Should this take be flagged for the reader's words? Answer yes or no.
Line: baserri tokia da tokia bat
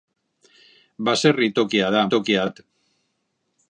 no